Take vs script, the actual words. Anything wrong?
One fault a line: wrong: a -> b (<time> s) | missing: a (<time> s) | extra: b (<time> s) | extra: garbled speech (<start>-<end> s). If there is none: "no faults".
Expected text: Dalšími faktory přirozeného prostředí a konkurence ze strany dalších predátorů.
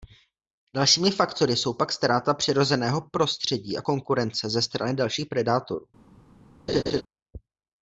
extra: jsou pak ztráta (1.6 s)